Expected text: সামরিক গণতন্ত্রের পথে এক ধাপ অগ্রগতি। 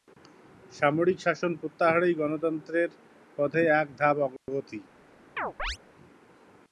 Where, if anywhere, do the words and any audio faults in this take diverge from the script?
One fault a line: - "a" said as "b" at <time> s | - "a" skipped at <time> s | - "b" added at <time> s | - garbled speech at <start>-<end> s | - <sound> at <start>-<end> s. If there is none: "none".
- "শাসন প্রত্যাহারই" added at 1.2 s
- dropout at 4.4-4.5 s
- chirp at 5.4-5.8 s